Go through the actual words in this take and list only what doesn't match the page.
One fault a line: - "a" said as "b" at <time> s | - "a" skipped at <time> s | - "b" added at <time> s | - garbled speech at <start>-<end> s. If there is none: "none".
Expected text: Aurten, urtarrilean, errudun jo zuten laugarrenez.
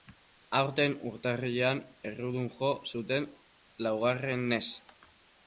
none